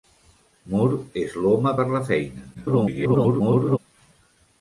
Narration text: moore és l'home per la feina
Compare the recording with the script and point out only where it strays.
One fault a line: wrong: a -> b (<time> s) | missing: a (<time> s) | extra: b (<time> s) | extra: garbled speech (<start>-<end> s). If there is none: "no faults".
extra: garbled speech (2.5-3.8 s)